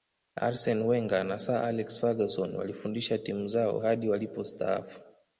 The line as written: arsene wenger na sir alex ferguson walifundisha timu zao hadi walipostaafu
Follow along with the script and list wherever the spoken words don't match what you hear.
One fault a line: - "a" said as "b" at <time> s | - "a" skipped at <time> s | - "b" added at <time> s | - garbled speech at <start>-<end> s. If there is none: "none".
none